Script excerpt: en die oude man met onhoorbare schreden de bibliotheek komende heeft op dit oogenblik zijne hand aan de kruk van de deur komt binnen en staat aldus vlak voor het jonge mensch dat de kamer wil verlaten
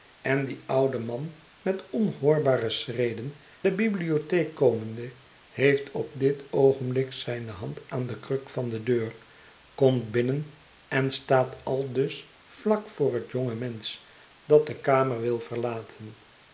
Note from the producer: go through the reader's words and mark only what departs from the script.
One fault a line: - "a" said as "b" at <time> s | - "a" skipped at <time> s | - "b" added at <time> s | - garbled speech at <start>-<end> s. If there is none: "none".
none